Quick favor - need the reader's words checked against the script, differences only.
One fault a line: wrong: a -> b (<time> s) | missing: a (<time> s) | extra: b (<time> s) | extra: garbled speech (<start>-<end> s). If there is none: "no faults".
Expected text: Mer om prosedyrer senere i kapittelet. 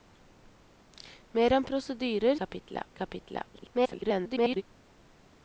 wrong: senere -> kapittelet (2.4 s)
extra: garbled speech (3.5-4.6 s)